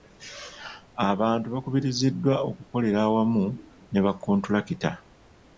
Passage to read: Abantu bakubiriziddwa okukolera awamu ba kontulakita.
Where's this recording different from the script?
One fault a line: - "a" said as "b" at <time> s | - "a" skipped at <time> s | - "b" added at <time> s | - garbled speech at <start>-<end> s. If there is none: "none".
- "ne" added at 3.9 s